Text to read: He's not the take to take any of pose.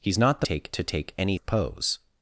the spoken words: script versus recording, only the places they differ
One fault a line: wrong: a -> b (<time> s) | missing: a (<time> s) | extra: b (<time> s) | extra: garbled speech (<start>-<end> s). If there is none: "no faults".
no faults